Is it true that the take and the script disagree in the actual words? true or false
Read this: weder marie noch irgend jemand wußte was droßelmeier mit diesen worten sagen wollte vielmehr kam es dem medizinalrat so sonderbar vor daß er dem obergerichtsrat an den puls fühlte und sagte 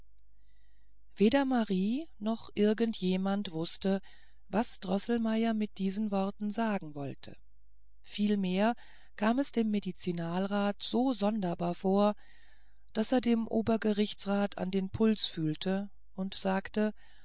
false